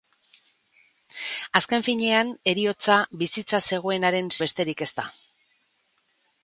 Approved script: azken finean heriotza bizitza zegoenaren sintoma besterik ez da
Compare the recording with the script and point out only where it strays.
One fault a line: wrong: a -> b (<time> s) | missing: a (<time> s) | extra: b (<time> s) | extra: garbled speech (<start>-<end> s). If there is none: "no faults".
missing: sintoma (4.3 s)